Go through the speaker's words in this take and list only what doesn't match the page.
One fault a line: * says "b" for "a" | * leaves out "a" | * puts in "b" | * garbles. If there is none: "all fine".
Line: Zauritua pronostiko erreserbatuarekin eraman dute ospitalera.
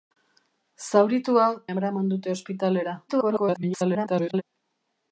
* leaves out "pronostiko erreserbatuarekin"
* garbles